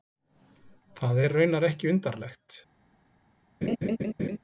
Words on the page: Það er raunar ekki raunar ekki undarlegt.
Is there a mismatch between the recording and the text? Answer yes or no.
yes